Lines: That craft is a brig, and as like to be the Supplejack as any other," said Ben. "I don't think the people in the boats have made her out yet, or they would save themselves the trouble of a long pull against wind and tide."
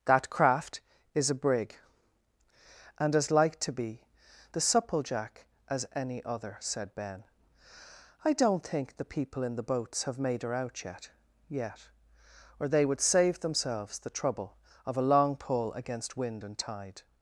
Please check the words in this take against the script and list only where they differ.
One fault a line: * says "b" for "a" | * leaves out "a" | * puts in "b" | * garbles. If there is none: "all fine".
* puts in "yet"